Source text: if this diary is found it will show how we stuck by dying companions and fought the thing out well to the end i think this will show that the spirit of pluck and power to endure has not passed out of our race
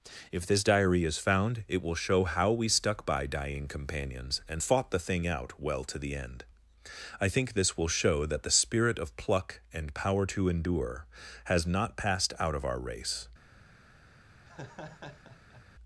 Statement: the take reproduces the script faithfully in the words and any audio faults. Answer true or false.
false